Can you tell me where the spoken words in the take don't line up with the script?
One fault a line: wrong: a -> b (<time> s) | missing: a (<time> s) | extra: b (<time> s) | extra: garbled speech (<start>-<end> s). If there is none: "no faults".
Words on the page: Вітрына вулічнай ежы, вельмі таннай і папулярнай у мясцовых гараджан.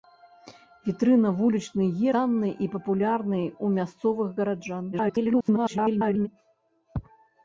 missing: ежы вельмі (1.9 s)
extra: garbled speech (4.9-6.3 s)